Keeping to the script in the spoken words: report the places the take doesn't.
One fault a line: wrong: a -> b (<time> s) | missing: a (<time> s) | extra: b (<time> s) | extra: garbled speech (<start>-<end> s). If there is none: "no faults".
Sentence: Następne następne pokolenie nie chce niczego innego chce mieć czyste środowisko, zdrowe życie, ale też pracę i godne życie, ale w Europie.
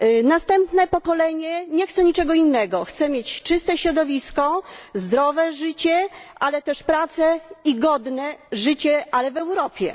missing: następne (0.9 s)